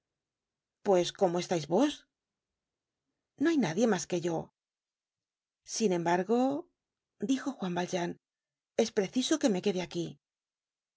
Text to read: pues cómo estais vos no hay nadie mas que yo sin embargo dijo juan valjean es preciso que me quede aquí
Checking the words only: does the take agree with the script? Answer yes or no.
yes